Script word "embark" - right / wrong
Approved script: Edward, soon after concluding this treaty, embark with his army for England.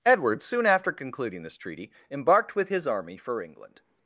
wrong